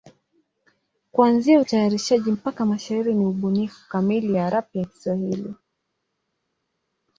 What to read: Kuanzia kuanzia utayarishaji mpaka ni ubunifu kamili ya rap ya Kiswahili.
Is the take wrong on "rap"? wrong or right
right